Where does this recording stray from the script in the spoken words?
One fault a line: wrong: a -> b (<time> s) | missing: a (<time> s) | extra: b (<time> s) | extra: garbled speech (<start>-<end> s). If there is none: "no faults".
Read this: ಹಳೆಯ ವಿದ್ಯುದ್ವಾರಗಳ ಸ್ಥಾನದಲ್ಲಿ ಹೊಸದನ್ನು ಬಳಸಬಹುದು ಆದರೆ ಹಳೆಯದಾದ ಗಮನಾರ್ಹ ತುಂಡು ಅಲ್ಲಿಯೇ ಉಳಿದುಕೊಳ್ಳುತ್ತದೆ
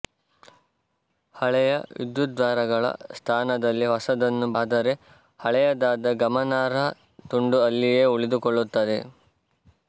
missing: ಬಳಸಬಹುದು (4.5 s)